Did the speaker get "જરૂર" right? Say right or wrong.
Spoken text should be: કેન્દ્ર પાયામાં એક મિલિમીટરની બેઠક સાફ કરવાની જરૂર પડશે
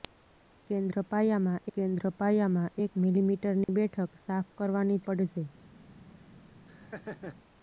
wrong